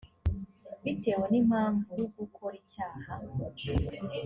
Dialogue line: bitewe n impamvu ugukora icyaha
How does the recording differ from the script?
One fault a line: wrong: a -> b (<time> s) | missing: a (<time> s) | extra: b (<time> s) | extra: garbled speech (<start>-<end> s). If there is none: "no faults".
no faults